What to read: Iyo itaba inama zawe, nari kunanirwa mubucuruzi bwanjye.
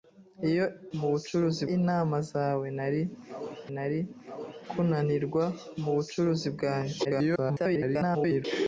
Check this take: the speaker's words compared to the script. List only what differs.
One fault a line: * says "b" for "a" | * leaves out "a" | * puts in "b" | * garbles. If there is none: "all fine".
* says "mubucuruzi" for "itaba"
* puts in "nari"
* garbles